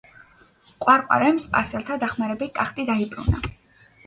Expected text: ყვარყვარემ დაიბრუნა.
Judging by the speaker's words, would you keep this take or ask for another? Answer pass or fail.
fail